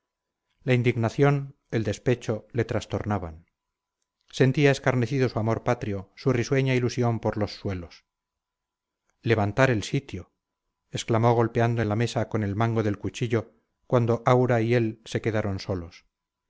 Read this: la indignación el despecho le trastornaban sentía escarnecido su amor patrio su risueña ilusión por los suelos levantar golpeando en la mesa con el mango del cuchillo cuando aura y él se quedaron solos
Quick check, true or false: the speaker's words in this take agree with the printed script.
false